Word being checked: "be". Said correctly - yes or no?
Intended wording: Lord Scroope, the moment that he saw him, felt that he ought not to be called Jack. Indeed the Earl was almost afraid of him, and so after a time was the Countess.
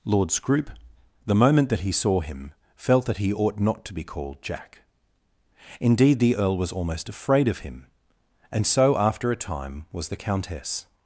yes